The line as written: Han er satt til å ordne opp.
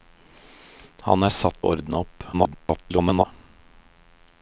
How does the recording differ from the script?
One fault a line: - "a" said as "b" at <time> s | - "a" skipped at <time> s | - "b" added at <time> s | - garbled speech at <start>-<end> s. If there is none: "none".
- "til" skipped at 1.6 s
- garbled speech at 2.3-3.3 s